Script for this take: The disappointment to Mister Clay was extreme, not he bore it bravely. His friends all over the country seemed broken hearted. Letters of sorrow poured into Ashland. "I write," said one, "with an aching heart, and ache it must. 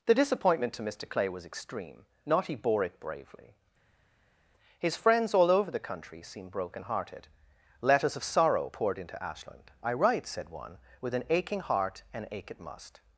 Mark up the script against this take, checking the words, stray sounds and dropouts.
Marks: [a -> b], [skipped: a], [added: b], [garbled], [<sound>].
The disappointment to Mister Clay was extreme, not he bore it bravely. His friends all over the country seemed broken hearted. Letters of sorrow poured into Ashland. "I write," said one, "with an aching heart, and ache it must.